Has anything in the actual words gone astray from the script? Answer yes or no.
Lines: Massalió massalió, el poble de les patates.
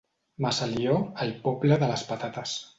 yes